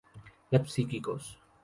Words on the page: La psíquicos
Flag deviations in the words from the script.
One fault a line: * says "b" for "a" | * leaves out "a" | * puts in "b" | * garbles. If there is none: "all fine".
all fine